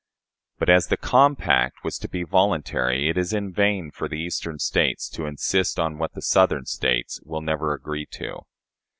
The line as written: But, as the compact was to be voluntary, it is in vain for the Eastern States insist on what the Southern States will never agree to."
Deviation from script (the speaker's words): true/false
true